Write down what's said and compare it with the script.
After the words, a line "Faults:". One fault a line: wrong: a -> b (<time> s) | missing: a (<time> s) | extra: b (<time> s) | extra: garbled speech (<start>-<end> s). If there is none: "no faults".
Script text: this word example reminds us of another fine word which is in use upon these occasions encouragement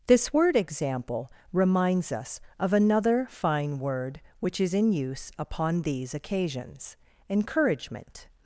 this word example reminds us of another fine word which is in use upon these occasions encouragement
Faults:
no faults